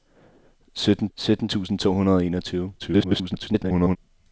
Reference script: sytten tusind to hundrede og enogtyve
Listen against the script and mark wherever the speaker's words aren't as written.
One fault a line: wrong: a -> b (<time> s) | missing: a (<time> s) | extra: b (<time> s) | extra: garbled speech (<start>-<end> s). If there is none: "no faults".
extra: sytten (1.1 s)
extra: garbled speech (2.8-4.0 s)